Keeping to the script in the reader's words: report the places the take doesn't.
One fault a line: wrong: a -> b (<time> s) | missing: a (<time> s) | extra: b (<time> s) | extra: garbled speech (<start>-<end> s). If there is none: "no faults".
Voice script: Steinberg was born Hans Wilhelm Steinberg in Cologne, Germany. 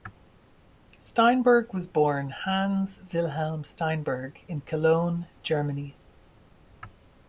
no faults